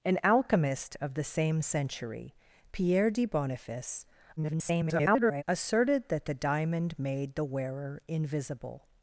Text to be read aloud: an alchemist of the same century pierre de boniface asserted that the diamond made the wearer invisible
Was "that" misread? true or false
false